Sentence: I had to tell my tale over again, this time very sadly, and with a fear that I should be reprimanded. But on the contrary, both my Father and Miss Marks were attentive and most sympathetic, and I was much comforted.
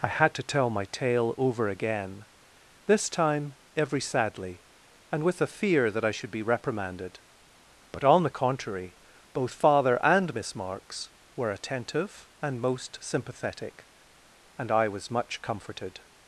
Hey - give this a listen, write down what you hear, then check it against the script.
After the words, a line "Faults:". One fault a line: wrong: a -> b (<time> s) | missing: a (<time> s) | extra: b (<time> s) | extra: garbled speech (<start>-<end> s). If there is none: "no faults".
I had to tell my tale over again, this time every sadly, and with a fear that I should be reprimanded. But on the contrary, both Father and Miss Marks were attentive and most sympathetic, and I was much comforted.
Faults:
wrong: very -> every (3.8 s)
missing: my (9.5 s)